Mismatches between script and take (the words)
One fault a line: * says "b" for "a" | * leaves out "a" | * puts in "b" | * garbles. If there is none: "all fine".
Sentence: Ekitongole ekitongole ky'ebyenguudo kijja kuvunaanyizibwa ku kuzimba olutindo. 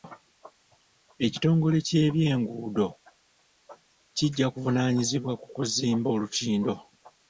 * leaves out "ekitongole"